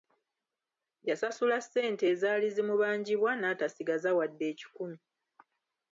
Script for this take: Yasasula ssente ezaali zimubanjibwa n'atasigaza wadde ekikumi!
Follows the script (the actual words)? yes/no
yes